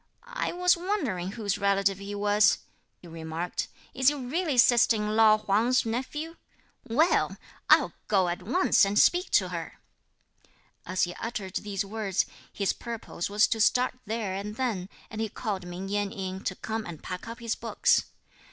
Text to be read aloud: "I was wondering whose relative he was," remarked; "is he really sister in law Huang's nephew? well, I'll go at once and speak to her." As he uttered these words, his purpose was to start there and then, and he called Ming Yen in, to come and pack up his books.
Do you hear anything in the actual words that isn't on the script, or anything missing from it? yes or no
no